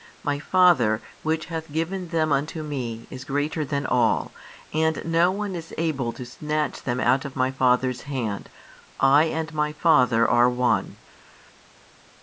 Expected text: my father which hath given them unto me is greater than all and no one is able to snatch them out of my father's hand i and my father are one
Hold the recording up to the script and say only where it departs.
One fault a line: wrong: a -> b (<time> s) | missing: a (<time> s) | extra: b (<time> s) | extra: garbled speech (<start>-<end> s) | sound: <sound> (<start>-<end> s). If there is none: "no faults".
no faults